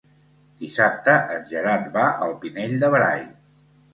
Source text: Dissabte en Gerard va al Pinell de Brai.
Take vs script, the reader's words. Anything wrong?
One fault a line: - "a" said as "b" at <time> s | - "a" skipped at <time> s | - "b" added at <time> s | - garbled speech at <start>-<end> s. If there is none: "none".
none